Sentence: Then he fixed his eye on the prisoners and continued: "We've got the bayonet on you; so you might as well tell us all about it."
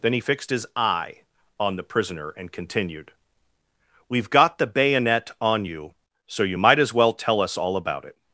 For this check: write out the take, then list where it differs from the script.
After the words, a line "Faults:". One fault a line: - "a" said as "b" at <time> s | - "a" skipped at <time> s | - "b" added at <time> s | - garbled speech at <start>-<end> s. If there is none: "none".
Then he fixed his eye on the prisoner and continued: "We've got the bayonet on you; so you might as well tell us all about it."
Faults:
- "prisoners" said as "prisoner" at 1.8 s